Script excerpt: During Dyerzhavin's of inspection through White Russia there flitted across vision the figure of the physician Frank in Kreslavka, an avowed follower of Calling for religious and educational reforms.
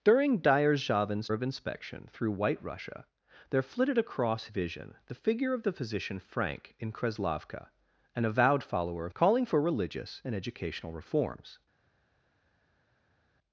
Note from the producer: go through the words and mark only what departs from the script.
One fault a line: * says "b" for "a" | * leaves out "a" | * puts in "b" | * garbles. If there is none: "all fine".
all fine